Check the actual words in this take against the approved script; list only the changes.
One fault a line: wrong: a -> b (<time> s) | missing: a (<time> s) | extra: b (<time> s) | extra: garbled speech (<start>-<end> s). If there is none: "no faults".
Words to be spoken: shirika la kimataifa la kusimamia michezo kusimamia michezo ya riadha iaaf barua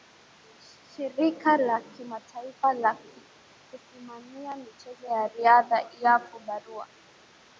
missing: kusimamia michezo (5.1 s)